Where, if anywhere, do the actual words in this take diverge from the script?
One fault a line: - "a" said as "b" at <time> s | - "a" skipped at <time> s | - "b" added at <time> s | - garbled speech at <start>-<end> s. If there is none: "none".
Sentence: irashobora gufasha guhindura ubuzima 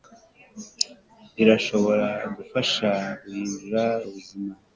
none